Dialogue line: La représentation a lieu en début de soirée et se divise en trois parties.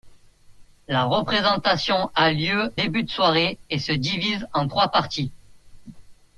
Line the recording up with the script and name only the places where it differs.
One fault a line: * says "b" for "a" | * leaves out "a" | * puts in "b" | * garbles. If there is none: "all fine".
* leaves out "en"